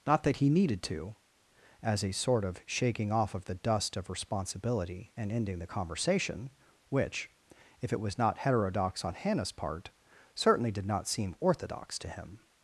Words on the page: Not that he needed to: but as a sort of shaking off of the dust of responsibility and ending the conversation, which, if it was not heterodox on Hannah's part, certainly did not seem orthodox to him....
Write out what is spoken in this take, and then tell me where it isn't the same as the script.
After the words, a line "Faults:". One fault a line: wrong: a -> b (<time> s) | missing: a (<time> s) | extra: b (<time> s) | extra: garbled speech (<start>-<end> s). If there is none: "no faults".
Not that he needed to: as a sort of shaking off of the dust of responsibility and ending the conversation, which, if it was not heterodox on Hannah's part, certainly did not seem orthodox to him....
Faults:
missing: but (1.1 s)